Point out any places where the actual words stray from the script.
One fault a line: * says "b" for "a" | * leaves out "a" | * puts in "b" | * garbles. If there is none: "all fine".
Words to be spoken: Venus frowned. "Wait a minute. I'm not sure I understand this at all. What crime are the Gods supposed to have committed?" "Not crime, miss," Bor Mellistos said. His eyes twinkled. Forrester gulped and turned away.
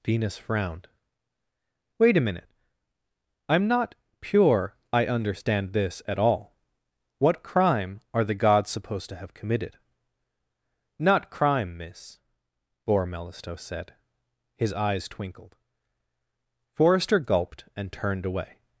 * says "pure" for "sure"